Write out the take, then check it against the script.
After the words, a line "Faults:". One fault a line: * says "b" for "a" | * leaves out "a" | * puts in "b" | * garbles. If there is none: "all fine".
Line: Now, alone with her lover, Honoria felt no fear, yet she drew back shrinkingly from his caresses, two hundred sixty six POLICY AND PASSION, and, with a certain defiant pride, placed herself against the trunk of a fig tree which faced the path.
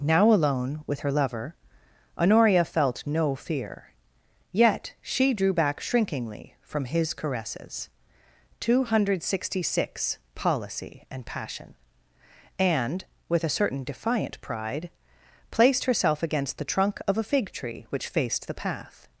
Now, alone with her lover, Honoria felt no fear, yet she drew back shrinkingly from his caresses, two hundred sixty six POLICY AND PASSION, and, with a certain defiant pride, placed herself against the trunk of a fig tree which faced the path.
Faults:
all fine